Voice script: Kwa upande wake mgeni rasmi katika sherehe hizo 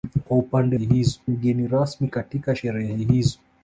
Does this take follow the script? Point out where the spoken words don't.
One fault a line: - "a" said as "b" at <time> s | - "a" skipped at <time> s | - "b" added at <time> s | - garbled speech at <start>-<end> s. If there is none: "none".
- "wake" said as "hizo" at 0.8 s